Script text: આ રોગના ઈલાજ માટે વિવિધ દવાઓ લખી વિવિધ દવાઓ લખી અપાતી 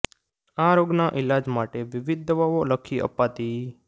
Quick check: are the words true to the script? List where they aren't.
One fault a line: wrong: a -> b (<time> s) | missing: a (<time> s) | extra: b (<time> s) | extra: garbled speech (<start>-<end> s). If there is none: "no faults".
missing: વિવિધ દવાઓ લખી (3.0 s)